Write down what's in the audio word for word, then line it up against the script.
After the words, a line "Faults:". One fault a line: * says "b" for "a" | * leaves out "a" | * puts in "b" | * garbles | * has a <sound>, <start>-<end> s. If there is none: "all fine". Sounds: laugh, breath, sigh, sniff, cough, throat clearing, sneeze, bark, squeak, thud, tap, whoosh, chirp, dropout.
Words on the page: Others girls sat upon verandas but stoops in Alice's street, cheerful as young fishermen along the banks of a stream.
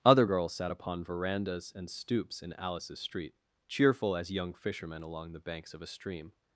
Other girls sat upon verandas and stoops in Alice's street, cheerful as young fishermen along the banks of a stream.
Faults:
* says "Other" for "Others"
* says "and" for "but"